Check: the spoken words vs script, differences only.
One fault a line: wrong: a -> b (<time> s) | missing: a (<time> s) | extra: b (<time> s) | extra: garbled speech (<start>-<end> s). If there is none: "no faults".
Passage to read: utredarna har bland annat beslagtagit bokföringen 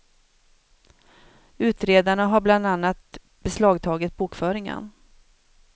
no faults